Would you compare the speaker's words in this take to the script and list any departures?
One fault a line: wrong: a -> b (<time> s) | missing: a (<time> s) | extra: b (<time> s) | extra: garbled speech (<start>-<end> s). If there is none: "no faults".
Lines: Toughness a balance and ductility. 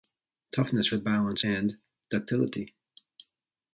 no faults